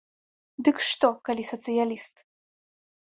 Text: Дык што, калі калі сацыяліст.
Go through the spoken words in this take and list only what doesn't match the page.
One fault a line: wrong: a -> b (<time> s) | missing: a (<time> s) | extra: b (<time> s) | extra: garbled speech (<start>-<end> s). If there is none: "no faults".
missing: калі (1.4 s)